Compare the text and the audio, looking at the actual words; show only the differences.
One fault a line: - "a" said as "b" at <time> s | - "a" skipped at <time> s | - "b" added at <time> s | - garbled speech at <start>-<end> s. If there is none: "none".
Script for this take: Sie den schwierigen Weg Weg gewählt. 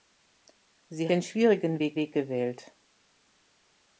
none